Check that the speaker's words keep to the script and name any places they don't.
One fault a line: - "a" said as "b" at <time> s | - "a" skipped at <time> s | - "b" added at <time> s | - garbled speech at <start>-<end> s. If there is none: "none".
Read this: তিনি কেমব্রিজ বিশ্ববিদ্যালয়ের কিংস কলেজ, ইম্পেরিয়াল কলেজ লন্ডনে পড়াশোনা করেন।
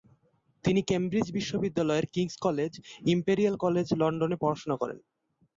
none